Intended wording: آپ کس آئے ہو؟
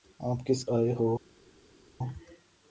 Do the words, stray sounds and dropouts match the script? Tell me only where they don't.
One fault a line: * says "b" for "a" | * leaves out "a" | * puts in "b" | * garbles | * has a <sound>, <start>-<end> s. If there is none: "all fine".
all fine